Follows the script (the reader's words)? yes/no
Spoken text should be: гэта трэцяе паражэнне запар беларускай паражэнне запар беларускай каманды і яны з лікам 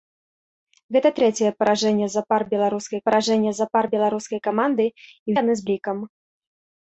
yes